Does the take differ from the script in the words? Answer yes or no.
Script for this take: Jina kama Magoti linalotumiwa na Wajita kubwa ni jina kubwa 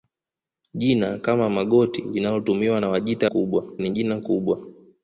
no